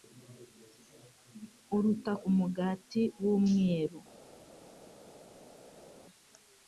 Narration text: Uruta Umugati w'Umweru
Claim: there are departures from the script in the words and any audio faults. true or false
false